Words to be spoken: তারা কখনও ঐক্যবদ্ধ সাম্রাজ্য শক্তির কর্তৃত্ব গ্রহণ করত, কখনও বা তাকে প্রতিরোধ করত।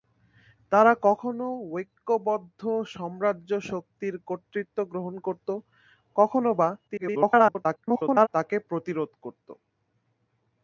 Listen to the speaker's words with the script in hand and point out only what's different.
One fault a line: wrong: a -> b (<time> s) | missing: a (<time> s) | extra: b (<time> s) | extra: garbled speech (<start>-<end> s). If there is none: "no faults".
extra: garbled speech (6.9-8.3 s)